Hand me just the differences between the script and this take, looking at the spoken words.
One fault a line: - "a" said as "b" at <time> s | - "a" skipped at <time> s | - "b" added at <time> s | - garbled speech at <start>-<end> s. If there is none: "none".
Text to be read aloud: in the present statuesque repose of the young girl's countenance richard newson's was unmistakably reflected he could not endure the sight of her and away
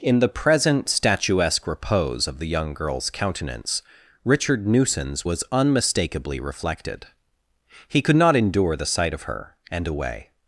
none